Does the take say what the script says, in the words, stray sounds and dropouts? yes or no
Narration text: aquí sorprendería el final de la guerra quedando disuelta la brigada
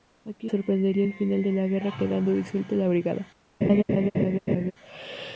no